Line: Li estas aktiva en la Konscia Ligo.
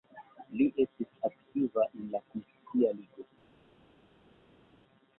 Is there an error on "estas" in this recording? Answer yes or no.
yes